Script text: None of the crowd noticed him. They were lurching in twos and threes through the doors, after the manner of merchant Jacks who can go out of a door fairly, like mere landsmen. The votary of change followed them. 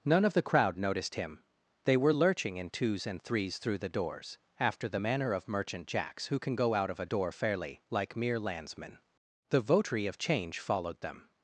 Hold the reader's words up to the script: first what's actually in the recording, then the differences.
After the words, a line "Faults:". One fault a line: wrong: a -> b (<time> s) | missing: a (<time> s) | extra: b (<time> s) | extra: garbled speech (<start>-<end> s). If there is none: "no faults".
None of the crowd noticed him. They were lurching in twos and threes through the doors, after the manner of merchant Jacks who can go out of a door fairly, like mere landsmen. The votary of change followed them.
Faults:
no faults